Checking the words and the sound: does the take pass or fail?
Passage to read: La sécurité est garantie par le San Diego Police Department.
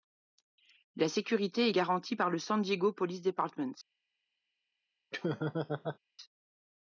fail